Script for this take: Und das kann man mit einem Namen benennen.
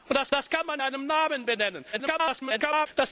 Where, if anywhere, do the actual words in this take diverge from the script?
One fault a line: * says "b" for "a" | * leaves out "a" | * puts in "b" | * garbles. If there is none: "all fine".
* puts in "das"
* leaves out "mit"
* garbles